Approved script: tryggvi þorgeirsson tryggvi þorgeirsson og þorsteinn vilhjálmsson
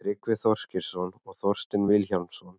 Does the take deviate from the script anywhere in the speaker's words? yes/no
yes